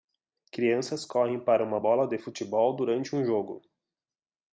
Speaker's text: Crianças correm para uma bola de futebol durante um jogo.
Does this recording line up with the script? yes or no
yes